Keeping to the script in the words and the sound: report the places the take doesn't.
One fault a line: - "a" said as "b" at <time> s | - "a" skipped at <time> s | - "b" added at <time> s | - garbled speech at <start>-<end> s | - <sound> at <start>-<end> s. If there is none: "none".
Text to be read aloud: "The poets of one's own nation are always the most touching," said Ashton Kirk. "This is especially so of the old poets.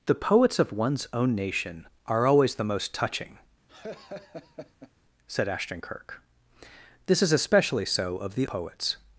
- laugh at 3.7-4.9 s
- "old" skipped at 8.5 s